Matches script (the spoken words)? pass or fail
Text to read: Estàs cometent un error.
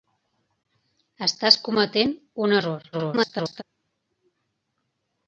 fail